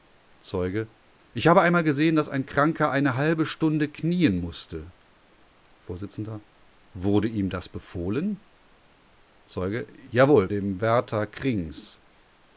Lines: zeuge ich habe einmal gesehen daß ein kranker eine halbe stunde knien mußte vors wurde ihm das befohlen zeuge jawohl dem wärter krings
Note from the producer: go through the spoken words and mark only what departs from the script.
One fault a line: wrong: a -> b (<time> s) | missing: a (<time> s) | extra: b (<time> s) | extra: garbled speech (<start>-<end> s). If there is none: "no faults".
no faults